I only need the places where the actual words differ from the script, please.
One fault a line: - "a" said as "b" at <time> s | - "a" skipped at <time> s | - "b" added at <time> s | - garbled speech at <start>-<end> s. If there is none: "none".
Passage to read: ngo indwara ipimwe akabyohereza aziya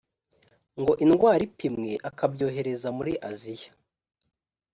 - "muri" added at 3.0 s